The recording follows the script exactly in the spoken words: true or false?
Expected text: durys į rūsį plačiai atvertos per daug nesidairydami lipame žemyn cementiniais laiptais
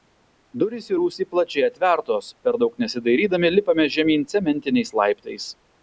true